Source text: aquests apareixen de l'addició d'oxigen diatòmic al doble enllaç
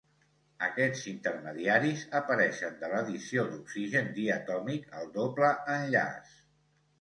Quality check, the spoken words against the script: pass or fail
fail